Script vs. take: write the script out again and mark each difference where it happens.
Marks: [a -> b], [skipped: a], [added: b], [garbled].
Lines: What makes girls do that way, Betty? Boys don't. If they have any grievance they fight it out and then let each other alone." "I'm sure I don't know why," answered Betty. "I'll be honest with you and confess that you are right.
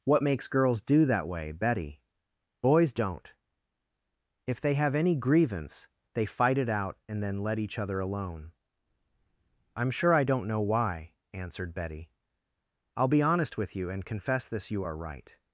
What makes girls do that way, Betty? Boys don't. If they have any grievance they fight it out and then let each other alone." "I'm sure I don't know why," answered Betty. "I'll be honest with you and confess [that -> this] you are right.